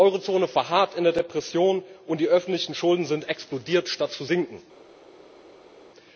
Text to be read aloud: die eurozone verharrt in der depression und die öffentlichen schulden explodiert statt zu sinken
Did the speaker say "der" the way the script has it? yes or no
yes